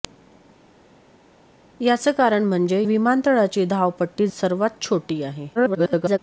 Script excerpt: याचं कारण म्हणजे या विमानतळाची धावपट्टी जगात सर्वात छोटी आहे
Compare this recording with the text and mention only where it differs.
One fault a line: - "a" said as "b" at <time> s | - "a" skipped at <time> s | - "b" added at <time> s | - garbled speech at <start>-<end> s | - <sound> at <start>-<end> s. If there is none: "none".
- "या" skipped at 2.8 s
- "जगात" skipped at 4.3 s
- garbled speech at 5.6-6.2 s